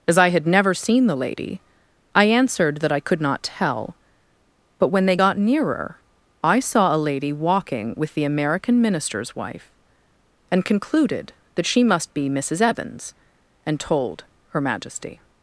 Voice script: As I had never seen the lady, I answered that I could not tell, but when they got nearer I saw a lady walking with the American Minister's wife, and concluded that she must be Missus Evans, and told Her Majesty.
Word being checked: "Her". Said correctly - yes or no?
yes